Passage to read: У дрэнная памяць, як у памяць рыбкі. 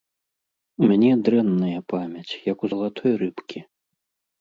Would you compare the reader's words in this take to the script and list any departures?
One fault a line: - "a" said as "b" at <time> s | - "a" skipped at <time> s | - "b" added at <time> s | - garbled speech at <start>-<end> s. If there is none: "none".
- "мяне" added at 0.9 s
- "памяць" said as "залатой" at 2.7 s